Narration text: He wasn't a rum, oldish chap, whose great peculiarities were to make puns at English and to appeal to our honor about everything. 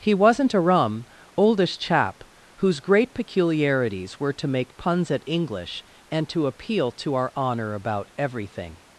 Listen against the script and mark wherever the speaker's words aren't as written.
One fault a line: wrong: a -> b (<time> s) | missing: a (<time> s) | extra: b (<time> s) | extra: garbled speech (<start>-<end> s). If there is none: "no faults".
no faults